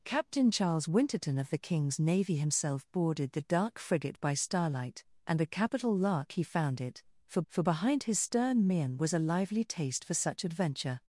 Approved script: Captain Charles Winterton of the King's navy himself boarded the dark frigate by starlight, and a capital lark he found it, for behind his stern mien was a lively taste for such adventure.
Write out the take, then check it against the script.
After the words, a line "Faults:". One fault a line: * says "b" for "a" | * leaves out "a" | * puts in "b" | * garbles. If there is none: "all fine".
Captain Charles Winterton of the King's navy himself boarded the dark frigate by starlight, and a capital lark he found it, for for behind his stern mien was a lively taste for such adventure.
Faults:
* puts in "for"